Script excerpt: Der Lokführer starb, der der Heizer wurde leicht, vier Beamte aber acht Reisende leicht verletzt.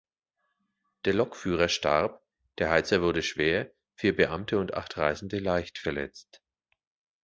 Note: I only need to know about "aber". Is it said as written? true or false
false